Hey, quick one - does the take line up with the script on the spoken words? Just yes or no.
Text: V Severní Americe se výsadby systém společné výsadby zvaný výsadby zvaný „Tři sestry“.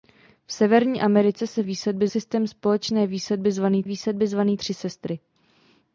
yes